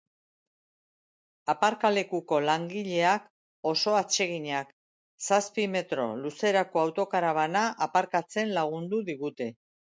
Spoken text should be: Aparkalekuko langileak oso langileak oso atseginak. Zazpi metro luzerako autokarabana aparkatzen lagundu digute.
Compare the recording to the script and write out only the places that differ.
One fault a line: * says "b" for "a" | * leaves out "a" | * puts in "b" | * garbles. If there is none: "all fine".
* leaves out "langileak oso"